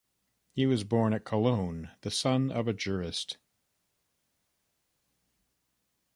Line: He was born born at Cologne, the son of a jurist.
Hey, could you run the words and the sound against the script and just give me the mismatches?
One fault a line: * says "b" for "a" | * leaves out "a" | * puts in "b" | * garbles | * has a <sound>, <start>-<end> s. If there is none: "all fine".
* leaves out "born"